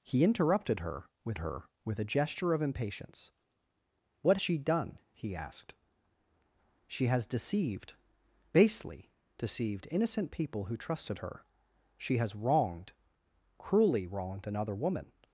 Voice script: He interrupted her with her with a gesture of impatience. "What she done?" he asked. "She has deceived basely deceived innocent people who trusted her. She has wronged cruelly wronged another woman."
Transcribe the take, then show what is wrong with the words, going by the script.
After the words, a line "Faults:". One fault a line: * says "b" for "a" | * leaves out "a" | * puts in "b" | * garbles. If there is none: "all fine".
He interrupted her with her with a gesture of impatience. "What she done?" he asked. "She has deceived basely deceived innocent people who trusted her. She has wronged cruelly wronged another woman."
Faults:
all fine